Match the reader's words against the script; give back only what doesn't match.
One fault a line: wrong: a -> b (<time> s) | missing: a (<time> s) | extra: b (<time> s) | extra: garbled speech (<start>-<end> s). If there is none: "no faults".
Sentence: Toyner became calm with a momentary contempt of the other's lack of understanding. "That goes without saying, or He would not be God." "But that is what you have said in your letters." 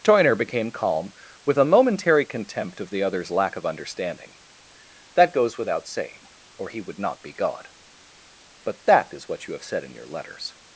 no faults